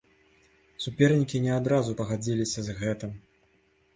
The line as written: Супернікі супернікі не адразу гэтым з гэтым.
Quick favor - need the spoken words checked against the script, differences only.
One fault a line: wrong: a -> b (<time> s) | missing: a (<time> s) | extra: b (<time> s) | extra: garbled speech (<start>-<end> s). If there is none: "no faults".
missing: супернікі (1.4 s)
wrong: гэтым -> пагадзіліся (2.0 s)